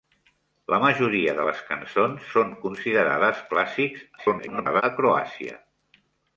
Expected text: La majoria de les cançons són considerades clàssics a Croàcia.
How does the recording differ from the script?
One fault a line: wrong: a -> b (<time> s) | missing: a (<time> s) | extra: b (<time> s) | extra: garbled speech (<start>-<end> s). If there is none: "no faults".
extra: garbled speech (4.2-4.8 s)